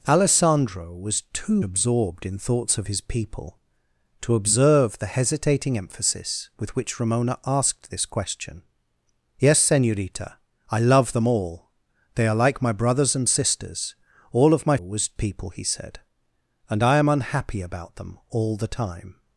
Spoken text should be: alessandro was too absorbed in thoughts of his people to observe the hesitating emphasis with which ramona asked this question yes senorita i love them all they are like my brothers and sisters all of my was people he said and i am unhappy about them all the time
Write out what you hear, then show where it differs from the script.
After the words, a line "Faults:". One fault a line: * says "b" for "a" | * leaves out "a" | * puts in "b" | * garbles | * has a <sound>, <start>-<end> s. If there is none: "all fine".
alessandro was too absorbed in thoughts of his people to observe the hesitating emphasis with which ramona asked this question yes senorita i love them all they are like my brothers and sisters all of my was people he said and i am unhappy about them all the time
Faults:
all fine